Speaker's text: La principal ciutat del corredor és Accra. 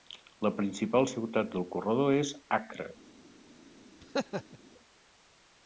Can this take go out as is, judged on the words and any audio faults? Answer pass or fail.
fail